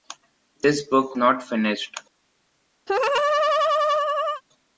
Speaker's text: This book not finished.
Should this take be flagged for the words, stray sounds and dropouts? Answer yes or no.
yes